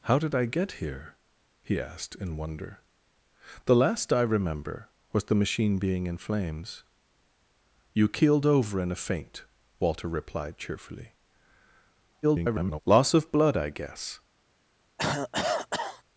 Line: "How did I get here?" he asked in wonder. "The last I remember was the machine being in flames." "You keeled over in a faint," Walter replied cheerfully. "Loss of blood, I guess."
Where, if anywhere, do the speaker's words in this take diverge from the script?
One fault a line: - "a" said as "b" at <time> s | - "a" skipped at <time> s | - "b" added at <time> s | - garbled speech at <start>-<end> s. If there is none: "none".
- garbled speech at 12.2-12.8 s